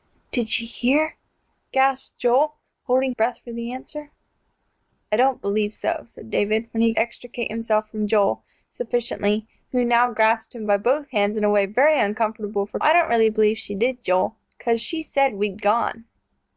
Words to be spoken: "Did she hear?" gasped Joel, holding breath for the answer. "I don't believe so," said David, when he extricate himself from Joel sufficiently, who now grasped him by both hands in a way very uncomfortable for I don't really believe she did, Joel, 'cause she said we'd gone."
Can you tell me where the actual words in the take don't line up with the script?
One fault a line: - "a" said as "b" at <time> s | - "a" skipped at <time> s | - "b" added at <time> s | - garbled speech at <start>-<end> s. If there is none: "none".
none